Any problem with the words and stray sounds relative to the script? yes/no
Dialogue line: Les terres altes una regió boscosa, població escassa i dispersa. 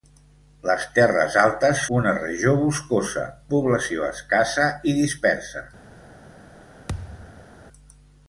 yes